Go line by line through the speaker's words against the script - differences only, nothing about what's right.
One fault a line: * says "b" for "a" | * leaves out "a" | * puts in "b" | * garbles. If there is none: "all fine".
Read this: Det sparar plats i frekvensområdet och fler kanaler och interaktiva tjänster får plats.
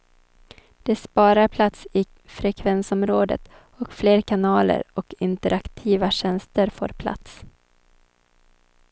all fine